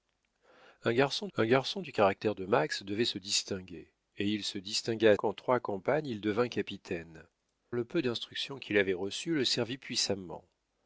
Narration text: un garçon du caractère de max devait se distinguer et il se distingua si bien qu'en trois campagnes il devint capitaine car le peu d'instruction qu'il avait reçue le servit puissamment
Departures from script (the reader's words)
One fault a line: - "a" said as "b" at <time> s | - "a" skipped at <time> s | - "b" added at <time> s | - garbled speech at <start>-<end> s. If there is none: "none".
- "un garçon" added at 1.4 s
- "si bien" skipped at 5.2 s
- "car" skipped at 7.3 s